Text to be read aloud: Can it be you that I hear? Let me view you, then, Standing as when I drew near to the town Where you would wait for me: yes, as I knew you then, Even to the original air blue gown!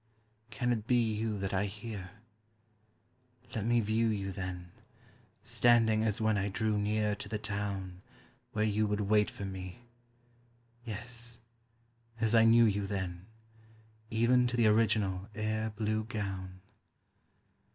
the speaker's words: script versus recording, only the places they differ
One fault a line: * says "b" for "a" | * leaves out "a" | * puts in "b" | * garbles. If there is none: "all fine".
all fine